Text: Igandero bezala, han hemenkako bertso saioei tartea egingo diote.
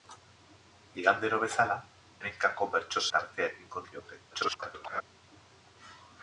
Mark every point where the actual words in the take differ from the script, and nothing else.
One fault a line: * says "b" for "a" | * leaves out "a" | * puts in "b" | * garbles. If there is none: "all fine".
* leaves out "han"
* leaves out "saioei"
* garbles